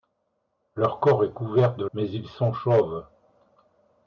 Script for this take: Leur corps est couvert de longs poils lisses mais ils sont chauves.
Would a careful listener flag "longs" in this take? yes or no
yes